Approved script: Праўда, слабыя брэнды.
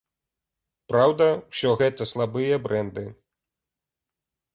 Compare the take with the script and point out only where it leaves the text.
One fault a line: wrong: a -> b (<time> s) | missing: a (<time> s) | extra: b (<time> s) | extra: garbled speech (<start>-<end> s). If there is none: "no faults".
extra: усё гэта (1.5 s)